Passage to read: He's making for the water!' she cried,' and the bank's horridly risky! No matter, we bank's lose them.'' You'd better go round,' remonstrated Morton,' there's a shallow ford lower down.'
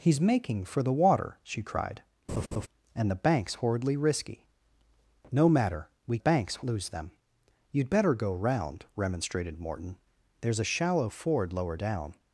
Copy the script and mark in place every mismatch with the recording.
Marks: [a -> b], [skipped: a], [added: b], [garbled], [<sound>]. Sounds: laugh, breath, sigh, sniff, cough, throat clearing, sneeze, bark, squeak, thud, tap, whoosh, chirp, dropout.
He's making for the water!' she cried,' [laugh] and the bank's horridly risky! No matter, we bank's lose them.'' You'd better go round,' remonstrated Morton,' there's a shallow ford lower down.'